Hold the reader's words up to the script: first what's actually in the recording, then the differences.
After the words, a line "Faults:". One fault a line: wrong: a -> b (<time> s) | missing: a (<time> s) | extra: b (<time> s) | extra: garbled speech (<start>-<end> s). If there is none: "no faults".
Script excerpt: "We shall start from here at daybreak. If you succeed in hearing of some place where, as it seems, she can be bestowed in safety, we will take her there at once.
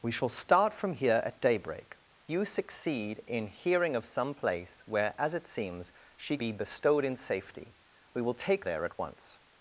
"We shall start from here at daybreak. You succeed in hearing of some place where, as it seems, she be bestowed in safety, we will take there at once.
Faults:
missing: If (2.0 s)
missing: can (6.4 s)
missing: her (8.6 s)